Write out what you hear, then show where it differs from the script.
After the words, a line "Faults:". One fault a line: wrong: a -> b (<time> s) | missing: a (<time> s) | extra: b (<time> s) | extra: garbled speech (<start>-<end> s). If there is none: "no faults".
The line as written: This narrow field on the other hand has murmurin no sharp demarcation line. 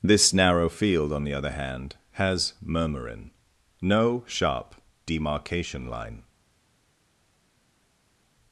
This narrow field on the other hand has murmurin no sharp demarcation line.
Faults:
no faults